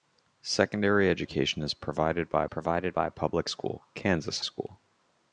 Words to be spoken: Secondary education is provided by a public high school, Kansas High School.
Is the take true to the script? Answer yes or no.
no